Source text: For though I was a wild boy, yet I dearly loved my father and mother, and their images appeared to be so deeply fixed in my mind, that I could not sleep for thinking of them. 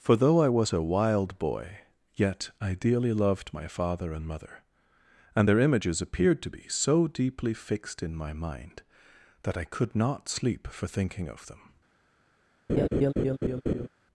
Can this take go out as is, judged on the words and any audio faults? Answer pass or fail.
fail